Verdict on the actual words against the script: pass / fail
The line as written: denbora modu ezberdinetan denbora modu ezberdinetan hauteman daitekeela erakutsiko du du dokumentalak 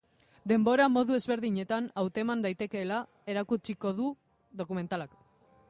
fail